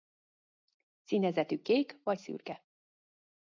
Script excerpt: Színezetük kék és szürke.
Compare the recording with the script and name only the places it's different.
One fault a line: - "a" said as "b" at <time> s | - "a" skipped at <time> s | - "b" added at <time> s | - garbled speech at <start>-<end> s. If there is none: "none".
- "és" said as "vagy" at 2.0 s